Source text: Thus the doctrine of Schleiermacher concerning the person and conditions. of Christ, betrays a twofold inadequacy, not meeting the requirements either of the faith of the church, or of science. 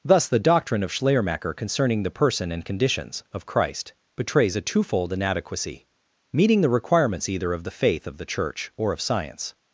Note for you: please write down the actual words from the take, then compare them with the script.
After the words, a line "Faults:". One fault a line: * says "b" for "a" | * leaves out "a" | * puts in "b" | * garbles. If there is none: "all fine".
Thus the doctrine of Schleiermacher concerning the person and conditions. of Christ, betrays a twofold inadequacy, meeting the requirements either of the faith of the church, or of science.
Faults:
* leaves out "not"